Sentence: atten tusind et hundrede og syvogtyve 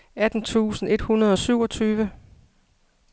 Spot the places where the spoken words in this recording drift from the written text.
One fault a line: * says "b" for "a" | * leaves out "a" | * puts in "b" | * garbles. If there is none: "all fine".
all fine